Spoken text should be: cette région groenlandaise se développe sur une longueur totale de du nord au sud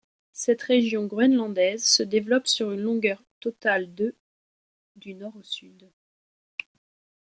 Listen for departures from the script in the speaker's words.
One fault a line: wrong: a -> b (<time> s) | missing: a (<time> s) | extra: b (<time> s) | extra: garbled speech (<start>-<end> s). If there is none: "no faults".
no faults